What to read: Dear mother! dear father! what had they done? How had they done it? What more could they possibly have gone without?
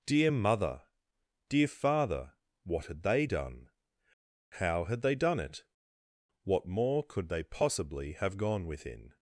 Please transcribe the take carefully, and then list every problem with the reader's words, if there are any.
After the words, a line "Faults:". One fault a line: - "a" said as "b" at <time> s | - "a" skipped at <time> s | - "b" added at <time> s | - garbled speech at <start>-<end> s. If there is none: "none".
Dear mother! dear father! what had they done? How had they done it? What more could they possibly have gone within?
Faults:
- "without" said as "within" at 8.7 s